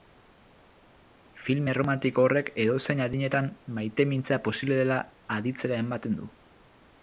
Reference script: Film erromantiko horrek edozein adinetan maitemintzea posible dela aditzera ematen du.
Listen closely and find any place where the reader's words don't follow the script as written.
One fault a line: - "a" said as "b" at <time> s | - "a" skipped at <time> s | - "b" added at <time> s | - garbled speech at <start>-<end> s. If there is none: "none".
none